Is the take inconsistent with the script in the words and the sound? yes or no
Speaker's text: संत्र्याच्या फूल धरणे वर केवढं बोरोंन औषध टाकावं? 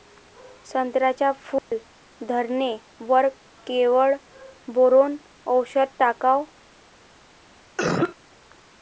yes